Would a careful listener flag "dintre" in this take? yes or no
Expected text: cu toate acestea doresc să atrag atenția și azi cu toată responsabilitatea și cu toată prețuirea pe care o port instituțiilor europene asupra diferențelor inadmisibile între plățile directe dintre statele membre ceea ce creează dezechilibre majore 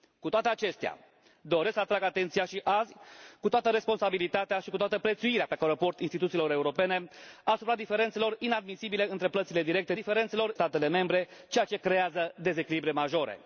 yes